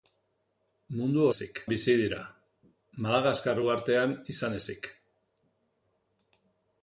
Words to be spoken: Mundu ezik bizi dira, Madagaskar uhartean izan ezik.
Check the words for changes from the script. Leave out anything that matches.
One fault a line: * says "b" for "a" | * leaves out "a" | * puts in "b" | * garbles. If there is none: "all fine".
all fine